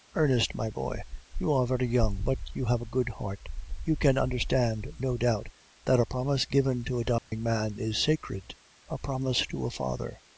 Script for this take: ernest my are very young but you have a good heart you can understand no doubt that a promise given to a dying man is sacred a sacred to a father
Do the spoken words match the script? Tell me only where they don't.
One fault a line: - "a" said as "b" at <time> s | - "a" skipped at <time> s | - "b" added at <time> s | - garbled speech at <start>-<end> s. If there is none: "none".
- "boy you" added at 0.7 s
- "sacred" said as "promise" at 9.0 s